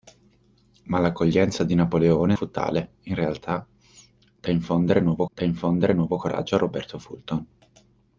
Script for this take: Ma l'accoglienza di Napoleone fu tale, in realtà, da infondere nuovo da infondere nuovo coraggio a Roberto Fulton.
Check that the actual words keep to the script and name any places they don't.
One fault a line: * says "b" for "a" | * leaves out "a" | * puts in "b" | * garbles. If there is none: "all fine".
all fine